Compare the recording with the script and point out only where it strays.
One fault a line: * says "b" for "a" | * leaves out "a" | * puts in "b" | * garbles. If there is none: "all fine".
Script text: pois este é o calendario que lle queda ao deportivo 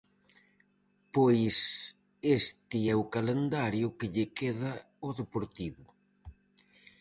all fine